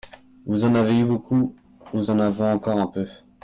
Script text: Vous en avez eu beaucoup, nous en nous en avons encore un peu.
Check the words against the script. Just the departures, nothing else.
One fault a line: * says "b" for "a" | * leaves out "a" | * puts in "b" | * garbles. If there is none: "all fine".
* leaves out "nous en"